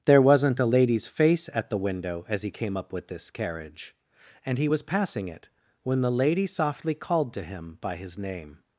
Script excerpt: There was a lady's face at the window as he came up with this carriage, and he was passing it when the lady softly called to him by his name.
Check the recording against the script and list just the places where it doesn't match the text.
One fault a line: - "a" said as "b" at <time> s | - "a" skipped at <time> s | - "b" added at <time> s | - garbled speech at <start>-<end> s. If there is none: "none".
- "was" said as "wasn't" at 0.2 s